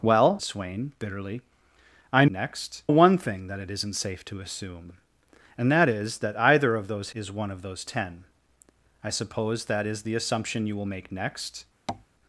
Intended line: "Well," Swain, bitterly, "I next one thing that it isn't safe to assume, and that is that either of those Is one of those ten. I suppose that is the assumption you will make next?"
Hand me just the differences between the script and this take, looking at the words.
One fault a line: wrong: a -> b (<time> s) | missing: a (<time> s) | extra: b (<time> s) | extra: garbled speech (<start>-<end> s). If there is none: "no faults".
no faults